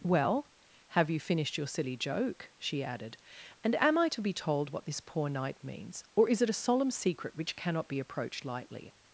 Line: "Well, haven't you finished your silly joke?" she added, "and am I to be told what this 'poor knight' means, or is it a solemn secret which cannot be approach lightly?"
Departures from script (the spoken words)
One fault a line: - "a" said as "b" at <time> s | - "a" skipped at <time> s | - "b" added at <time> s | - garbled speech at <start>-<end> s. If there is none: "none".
- "haven't" said as "have" at 0.9 s
- "approach" said as "approached" at 8.0 s